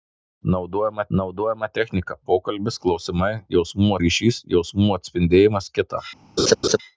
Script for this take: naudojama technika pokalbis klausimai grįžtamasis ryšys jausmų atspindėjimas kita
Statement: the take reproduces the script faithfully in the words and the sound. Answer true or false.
false